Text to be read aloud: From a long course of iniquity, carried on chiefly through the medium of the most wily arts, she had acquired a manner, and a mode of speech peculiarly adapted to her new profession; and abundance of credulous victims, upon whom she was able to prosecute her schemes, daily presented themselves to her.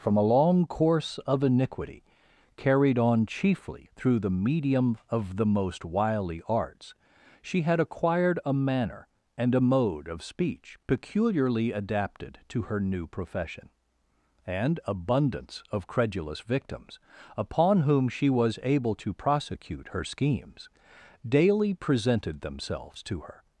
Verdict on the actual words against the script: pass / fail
pass